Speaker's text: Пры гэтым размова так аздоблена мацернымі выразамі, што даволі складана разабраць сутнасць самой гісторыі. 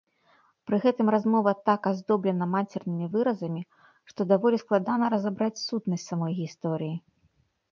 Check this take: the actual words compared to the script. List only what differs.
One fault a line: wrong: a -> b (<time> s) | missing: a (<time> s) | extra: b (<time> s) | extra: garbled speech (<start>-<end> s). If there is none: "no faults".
no faults